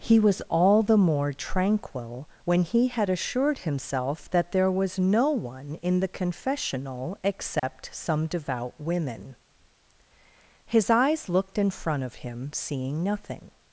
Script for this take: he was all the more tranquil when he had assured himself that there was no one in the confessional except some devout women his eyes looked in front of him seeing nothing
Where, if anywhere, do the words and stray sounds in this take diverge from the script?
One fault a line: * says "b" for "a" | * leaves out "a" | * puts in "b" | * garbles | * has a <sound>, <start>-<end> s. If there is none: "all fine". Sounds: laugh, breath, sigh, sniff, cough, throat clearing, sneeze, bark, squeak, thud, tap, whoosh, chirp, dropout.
* has a dropout, 7.6-7.6 s